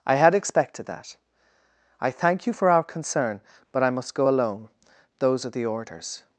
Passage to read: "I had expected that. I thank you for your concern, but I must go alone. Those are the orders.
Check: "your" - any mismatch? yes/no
yes